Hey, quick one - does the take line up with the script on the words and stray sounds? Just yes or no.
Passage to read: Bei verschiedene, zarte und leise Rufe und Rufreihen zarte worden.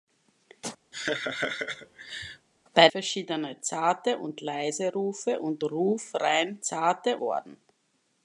no